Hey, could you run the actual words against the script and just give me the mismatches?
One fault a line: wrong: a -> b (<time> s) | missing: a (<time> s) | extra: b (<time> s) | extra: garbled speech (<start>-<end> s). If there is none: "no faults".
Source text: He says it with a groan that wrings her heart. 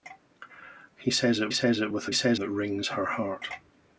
extra: says it (1.5 s)
wrong: groan -> says (2.1 s)